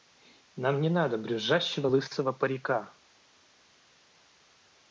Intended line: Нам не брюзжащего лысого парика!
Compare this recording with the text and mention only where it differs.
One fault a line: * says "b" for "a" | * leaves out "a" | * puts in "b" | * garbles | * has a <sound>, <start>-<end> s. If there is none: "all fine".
* puts in "надо"